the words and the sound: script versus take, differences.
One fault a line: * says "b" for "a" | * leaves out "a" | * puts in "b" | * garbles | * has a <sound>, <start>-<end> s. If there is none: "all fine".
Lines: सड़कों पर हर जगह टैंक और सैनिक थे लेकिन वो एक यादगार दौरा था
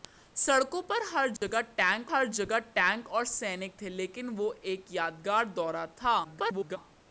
* has a dropout, 1.4-1.4 s
* puts in "हर जगह टैंक"
* garbles